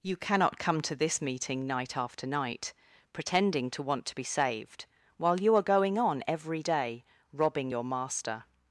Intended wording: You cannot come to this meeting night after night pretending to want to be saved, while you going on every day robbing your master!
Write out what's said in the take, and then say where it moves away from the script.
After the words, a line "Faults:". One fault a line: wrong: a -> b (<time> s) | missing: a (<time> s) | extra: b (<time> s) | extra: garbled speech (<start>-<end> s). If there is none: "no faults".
You cannot come to this meeting night after night pretending to want to be saved, while you are going on every day robbing your master!
Faults:
extra: are (5.5 s)